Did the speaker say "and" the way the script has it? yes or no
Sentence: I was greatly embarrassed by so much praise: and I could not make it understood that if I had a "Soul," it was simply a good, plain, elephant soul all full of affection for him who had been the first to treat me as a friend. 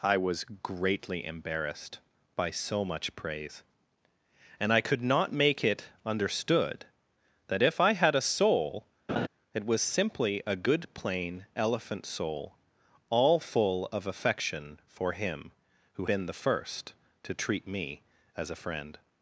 yes